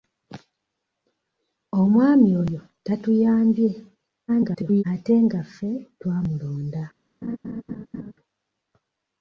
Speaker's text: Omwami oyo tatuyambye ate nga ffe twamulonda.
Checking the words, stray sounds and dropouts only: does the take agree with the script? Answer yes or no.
no